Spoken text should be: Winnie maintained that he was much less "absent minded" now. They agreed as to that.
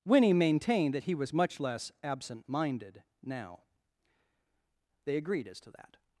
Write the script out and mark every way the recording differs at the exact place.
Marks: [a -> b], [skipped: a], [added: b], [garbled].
Winnie maintained that he was much less "absent minded" now. They agreed as to that.